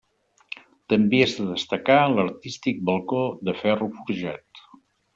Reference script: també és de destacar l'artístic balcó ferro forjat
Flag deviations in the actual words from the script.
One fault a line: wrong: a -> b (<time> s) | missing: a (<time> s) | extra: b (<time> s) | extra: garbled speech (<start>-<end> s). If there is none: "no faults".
extra: de (3.5 s)